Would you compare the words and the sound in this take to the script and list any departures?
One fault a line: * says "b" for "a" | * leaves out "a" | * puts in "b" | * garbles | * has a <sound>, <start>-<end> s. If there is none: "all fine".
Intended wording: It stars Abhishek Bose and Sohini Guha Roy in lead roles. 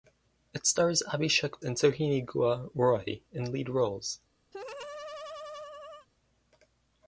* leaves out "Bose"
* has a laugh, 4.5-6.1 s